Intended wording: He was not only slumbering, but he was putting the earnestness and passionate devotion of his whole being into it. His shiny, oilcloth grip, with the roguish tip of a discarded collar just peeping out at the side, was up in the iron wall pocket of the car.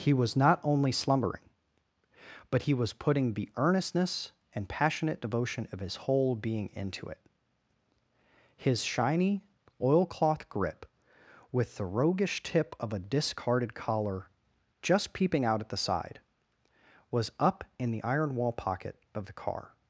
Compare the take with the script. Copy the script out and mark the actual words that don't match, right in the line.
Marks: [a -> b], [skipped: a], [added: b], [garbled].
He was not only slumbering, but he was putting the earnestness and passionate devotion of his whole being into it. His shiny, oilcloth grip, with the roguish tip of a discarded collar just peeping out at the side, was up in the iron wall pocket of the car.